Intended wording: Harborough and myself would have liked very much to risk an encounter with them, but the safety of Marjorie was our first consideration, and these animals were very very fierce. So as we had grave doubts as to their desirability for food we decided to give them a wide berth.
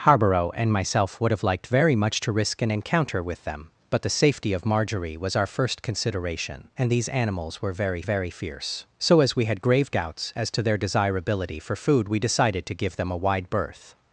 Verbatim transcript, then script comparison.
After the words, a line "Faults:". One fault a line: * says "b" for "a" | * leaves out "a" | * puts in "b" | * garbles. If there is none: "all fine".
Harborough and myself would have liked very much to risk an encounter with them, but the safety of Marjorie was our first consideration, and these animals were very very fierce. So as we had grave doubts as to their desirability for food we decided to give them a wide berth.
Faults:
all fine